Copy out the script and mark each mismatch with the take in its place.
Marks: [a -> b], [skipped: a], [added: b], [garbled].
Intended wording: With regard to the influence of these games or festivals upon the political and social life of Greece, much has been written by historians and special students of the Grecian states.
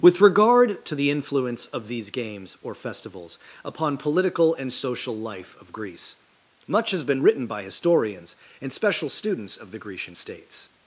With regard to the influence of these games or festivals upon [skipped: the] political and social life of Greece, much has been written by historians and special students of the Grecian states.